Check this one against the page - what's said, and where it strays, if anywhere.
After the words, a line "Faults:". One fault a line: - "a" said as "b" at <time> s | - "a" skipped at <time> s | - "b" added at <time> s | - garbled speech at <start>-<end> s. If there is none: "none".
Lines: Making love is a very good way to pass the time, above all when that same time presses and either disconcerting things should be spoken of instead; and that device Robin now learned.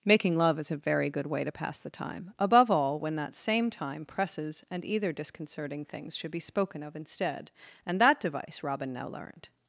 Making love is a very good way to pass the time, above all when that same time presses and either disconcerting things should be spoken of instead; and that device Robin now learned.
Faults:
none